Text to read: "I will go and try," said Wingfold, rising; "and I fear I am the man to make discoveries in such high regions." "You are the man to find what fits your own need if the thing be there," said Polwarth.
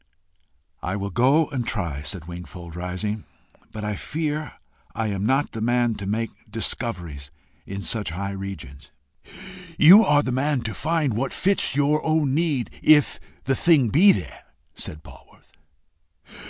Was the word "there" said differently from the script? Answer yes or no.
no